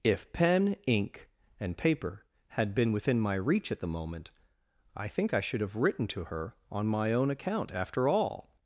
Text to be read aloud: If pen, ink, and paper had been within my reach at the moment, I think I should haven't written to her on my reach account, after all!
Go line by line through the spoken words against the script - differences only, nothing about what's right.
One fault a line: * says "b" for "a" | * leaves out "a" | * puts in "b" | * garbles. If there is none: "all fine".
* says "have" for "haven't"
* says "own" for "reach"